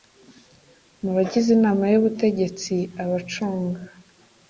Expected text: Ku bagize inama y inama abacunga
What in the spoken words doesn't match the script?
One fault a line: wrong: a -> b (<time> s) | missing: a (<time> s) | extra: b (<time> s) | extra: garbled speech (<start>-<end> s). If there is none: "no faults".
wrong: Ku -> Mu (1.0 s)
wrong: inama -> ubutegetsi (2.0 s)